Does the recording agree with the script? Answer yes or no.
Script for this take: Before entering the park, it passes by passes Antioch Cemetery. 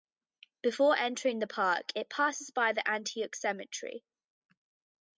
no